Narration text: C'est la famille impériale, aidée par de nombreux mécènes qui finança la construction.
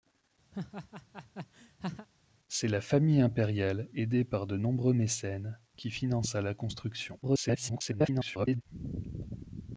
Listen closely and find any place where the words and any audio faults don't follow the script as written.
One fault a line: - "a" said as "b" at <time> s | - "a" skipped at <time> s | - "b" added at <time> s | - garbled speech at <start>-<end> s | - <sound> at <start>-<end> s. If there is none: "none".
- laugh at 0.5-2.1 s
- garbled speech at 7.2-8.6 s